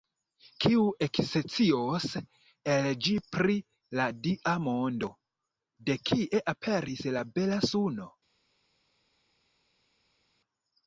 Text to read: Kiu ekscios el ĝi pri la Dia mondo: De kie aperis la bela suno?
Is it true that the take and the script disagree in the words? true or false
false